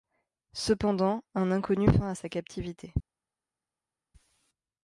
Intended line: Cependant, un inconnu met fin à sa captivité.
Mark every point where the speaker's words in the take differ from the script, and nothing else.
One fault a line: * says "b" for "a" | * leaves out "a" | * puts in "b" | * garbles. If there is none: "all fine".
* leaves out "met"